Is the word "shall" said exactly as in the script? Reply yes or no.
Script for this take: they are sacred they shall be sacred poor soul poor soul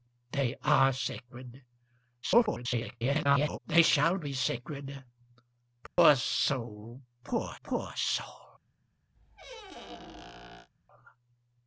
yes